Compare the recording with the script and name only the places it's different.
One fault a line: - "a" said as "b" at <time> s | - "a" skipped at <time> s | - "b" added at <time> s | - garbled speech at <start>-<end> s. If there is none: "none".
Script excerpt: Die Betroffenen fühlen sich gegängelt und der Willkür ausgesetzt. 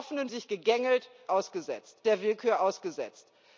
- "fühlen" skipped at 0.3 s
- "und" said as "ausgesetzt" at 1.3 s